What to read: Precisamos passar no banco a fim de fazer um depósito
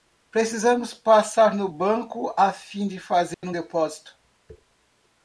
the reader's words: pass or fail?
pass